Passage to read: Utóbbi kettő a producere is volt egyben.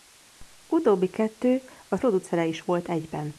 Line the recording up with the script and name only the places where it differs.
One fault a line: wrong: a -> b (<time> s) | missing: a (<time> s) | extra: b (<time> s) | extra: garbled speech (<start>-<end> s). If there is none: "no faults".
no faults